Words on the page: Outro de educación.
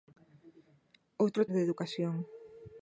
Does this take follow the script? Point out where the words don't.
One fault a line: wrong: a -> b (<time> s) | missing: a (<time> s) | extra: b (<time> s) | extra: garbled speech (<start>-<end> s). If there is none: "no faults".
no faults